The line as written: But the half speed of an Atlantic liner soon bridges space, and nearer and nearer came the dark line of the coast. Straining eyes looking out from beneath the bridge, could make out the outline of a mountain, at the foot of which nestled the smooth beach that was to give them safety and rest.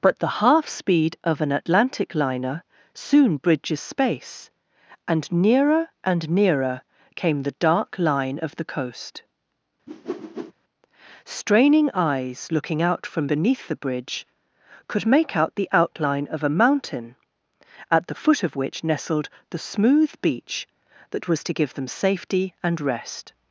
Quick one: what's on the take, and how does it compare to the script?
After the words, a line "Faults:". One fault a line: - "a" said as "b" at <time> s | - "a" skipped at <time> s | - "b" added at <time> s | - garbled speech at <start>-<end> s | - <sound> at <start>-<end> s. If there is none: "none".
But the half speed of an Atlantic liner soon bridges space, and nearer and nearer came the dark line of the coast. Straining eyes looking out from beneath the bridge, could make out the outline of a mountain, at the foot of which nestled the smooth beach that was to give them safety and rest.
Faults:
- whoosh at 9.9-10.5 s